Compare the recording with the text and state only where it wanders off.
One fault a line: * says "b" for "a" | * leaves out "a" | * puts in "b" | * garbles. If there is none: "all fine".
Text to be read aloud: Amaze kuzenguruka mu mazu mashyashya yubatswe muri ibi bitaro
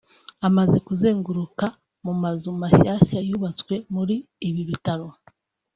all fine